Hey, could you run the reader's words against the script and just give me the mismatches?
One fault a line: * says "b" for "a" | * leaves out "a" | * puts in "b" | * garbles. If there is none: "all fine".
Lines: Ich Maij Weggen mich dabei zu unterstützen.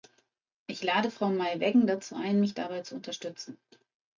* puts in "lade Frau"
* puts in "dazu ein"